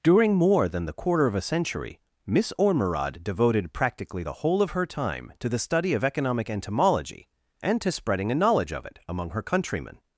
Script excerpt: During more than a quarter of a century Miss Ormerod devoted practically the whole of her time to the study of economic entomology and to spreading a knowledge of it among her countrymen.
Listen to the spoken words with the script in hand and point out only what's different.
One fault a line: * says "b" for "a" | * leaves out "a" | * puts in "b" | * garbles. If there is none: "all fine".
* says "the" for "a"